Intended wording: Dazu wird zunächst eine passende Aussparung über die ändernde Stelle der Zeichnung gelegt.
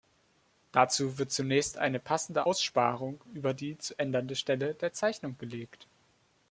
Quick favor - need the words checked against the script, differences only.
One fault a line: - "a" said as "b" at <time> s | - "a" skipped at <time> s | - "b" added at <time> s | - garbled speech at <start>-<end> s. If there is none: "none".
- "zu" added at 3.8 s